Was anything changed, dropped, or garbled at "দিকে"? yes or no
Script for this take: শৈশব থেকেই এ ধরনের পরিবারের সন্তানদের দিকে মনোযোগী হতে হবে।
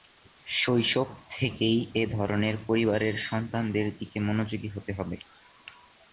no